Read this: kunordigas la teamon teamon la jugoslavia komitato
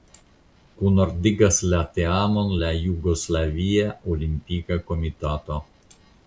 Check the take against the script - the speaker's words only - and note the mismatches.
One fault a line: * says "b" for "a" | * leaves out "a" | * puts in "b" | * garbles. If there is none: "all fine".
* leaves out "teamon"
* puts in "olimpika"